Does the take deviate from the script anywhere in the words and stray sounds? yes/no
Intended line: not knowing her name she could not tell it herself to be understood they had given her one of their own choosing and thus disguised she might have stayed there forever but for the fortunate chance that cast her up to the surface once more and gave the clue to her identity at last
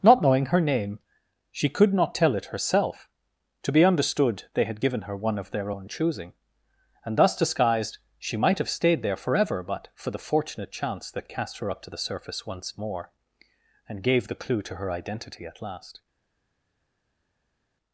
no